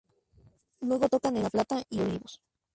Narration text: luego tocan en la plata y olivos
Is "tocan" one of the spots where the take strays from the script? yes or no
no